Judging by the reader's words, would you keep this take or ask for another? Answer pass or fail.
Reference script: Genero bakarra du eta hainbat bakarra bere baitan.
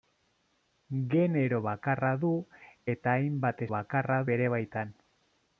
pass